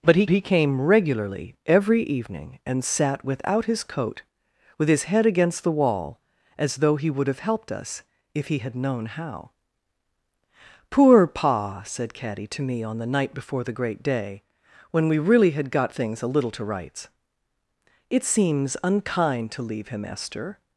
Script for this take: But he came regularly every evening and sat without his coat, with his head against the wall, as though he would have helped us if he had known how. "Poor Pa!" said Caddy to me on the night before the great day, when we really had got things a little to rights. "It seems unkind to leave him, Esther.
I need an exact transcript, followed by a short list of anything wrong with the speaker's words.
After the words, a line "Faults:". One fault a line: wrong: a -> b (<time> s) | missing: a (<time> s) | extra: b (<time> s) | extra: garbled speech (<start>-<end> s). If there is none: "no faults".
But he he came regularly every evening and sat without his coat, with his head against the wall, as though he would have helped us if he had known how. "Poor Pa!" said Caddy to me on the night before the great day, when we really had got things a little to rights. "It seems unkind to leave him, Esther.
Faults:
extra: he (0.3 s)